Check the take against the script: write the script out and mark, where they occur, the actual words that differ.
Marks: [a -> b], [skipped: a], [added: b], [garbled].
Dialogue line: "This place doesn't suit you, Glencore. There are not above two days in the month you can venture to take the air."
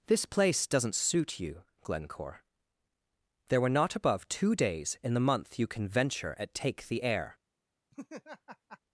"This place doesn't suit you, Glencore. There [are -> were] not above two days in the month you can venture [to -> at] take the air."